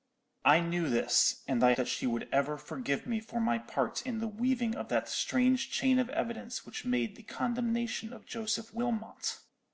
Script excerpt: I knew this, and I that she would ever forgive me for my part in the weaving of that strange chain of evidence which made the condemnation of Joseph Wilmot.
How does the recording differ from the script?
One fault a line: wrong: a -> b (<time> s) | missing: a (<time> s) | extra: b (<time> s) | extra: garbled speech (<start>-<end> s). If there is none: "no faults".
no faults